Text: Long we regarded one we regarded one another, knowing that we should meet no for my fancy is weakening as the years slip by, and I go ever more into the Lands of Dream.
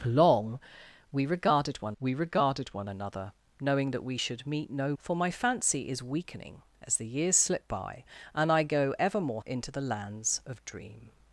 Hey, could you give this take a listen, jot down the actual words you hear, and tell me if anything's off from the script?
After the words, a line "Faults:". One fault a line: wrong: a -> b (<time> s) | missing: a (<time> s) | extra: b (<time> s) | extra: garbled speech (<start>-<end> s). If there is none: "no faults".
Long we regarded one we regarded one another, knowing that we should meet no for my fancy is weakening as the years slip by, and I go ever more into the Lands of Dream.
Faults:
no faults